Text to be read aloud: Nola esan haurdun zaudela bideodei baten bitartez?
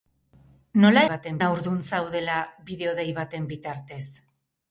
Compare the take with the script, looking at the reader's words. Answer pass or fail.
fail